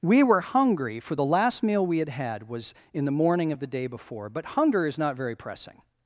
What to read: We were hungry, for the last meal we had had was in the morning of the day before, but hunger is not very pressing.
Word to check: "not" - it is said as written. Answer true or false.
true